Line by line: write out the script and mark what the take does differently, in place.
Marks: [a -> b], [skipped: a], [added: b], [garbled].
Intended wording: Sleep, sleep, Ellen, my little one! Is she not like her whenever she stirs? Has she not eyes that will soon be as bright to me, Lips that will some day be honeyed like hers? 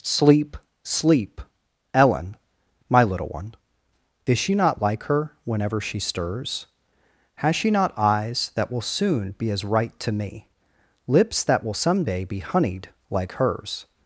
Sleep, sleep, Ellen, my little one! Is she not like her whenever she stirs? Has she not eyes that will soon be as [bright -> right] to me, Lips that will some day be honeyed like hers?